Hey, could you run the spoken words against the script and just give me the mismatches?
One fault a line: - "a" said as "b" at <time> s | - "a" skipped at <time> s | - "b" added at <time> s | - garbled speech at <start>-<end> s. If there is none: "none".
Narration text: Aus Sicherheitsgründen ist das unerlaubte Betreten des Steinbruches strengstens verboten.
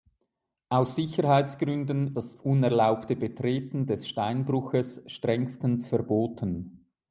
- "ist" skipped at 2.2 s